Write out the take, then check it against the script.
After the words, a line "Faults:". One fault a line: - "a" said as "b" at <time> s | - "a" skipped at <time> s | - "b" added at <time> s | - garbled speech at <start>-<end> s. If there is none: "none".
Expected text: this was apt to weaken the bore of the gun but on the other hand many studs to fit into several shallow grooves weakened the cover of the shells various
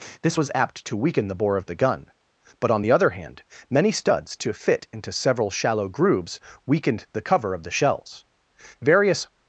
this was apt to weaken the bore of the gun but on the other hand many studs to fit into several shallow grooves weakened the cover of the shells various
Faults:
none